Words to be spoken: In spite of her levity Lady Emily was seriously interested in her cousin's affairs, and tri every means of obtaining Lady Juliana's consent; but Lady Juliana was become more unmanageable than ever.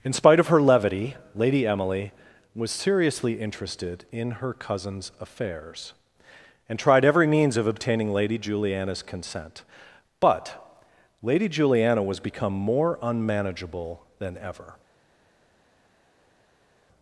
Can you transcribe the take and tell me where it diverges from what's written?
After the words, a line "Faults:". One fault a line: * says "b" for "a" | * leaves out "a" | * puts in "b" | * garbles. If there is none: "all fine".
In spite of her levity Lady Emily was seriously interested in her cousin's affairs, and tried every means of obtaining Lady Juliana's consent; but Lady Juliana was become more unmanageable than ever.
Faults:
* says "tried" for "tri"